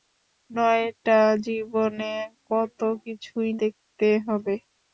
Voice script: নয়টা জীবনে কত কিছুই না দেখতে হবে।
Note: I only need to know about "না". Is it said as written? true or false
false